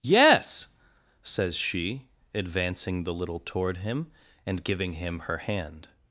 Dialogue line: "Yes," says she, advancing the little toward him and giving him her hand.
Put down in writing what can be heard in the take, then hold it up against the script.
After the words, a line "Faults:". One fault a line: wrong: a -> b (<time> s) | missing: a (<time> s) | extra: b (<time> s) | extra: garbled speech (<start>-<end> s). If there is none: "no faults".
"Yes," says she, advancing the little toward him and giving him her hand.
Faults:
no faults